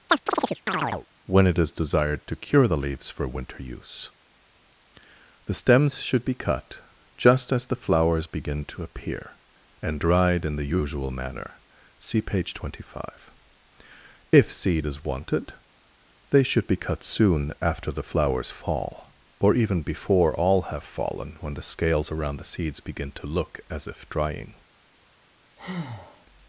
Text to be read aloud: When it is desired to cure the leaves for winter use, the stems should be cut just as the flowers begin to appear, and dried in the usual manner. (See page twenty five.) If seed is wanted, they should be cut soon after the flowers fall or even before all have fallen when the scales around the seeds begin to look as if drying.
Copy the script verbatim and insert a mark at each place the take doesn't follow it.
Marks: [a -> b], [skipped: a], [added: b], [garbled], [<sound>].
[chirp] When it is desired to cure the leaves for winter use, the stems should be cut just as the flowers begin to appear, and dried in the usual manner. (See page twenty five.) If seed is wanted, they should be cut soon after the flowers fall or even before all have fallen when the scales around the seeds begin to look as if drying. [breath]